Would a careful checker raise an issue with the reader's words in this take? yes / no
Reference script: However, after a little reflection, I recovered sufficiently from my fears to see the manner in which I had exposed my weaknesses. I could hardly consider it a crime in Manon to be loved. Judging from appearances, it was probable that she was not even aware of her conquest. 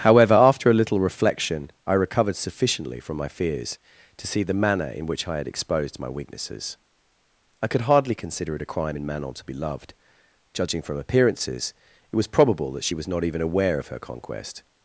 no